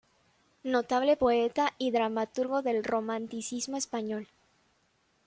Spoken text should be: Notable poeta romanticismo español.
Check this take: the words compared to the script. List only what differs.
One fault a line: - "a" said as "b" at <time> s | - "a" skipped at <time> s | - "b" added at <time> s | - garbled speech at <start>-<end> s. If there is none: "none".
- "y dramaturgo del" added at 1.8 s